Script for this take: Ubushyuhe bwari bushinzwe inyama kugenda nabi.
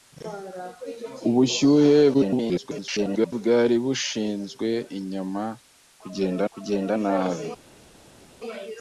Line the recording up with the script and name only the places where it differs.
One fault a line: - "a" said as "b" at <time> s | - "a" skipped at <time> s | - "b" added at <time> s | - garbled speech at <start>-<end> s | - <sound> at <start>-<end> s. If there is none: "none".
- garbled speech at 2.1-3.3 s
- "kugenda" added at 6.5 s